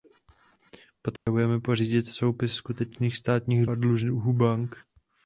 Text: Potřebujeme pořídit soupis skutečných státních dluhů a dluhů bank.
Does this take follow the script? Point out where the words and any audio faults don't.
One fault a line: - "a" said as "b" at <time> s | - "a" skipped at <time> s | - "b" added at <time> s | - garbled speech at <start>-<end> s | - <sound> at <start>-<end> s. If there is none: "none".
- dropout at 1.2-1.3 s
- "dluhů" skipped at 3.6 s